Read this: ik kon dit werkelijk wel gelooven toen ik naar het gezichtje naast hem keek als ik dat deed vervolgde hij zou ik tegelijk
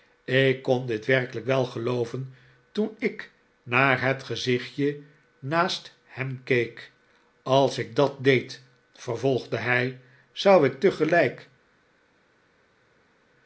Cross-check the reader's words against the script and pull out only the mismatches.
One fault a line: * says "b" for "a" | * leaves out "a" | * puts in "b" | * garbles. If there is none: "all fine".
all fine